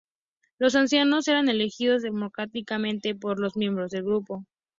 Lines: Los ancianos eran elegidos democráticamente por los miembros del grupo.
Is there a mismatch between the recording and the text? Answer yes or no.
no